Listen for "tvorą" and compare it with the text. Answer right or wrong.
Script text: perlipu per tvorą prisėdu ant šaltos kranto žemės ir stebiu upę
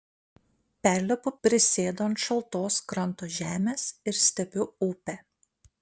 wrong